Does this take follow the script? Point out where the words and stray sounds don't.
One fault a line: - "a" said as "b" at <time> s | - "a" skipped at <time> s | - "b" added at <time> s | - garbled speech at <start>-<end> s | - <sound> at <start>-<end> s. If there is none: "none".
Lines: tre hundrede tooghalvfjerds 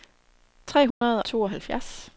- dropout at 0.9-1.0 s